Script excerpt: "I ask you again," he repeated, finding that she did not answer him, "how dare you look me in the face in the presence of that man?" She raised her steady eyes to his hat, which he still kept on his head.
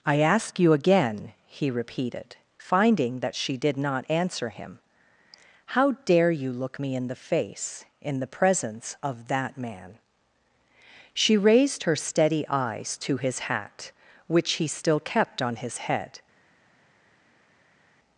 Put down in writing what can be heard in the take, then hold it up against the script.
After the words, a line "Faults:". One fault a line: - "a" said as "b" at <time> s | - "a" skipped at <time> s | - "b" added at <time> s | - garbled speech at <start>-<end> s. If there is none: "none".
"I ask you again," he repeated, finding that she did not answer him, "how dare you look me in the face in the presence of that man?" She raised her steady eyes to his hat, which he still kept on his head.
Faults:
none